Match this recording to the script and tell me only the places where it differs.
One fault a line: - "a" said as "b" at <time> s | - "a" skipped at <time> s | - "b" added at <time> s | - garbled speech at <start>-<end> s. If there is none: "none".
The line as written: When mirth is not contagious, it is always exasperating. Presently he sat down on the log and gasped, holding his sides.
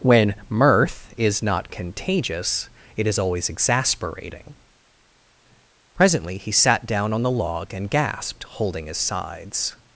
none